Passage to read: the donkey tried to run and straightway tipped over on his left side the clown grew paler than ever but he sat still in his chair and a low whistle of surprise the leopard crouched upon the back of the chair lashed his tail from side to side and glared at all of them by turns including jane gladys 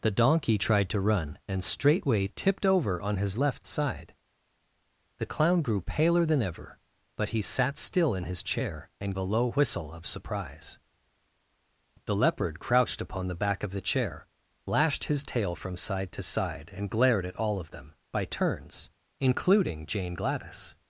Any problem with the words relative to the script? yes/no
no